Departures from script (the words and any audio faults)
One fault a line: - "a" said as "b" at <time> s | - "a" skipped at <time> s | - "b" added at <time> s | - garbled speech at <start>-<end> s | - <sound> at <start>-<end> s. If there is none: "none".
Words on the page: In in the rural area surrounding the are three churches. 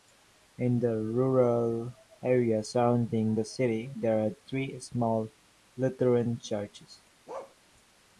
- "in" skipped at 0.8 s
- "city there" added at 3.4 s
- "small Lutheran" added at 4.8 s
- bark at 7.3-7.6 s